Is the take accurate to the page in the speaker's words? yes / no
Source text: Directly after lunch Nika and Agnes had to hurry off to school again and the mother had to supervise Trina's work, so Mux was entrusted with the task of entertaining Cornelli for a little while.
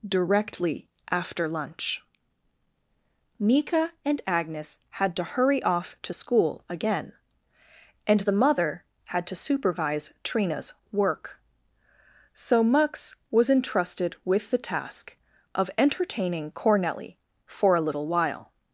yes